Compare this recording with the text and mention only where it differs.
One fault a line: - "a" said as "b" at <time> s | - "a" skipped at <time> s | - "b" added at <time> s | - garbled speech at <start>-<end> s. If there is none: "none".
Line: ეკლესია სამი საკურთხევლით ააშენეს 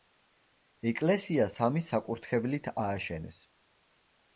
none